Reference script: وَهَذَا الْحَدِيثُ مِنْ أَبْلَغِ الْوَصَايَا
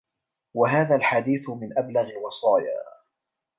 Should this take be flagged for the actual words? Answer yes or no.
no